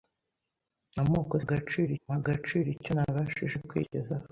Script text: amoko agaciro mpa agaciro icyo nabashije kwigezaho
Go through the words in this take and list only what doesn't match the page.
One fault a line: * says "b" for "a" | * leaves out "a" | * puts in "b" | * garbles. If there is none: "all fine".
all fine